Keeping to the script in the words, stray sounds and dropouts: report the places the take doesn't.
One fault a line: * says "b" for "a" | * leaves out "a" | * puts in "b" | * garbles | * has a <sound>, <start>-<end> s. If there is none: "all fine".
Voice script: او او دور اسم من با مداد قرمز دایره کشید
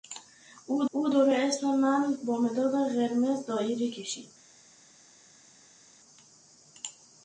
all fine